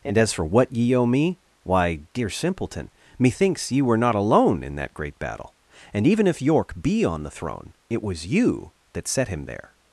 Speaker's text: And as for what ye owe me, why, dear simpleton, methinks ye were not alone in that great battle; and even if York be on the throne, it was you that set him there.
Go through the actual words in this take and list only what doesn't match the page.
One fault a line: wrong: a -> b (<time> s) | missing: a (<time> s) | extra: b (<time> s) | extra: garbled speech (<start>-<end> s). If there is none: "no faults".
no faults